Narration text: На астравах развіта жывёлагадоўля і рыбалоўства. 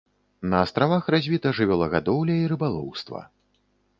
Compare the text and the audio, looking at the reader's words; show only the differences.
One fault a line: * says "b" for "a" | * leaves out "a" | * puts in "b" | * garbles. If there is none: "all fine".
all fine